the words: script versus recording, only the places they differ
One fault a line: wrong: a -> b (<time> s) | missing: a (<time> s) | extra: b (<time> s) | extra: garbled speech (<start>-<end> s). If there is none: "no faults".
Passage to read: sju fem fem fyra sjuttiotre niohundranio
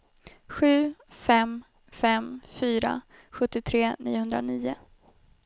no faults